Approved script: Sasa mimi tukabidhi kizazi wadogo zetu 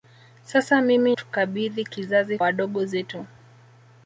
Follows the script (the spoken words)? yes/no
yes